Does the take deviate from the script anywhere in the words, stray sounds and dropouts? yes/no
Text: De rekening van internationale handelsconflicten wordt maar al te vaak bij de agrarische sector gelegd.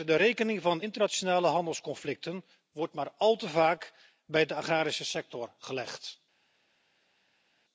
no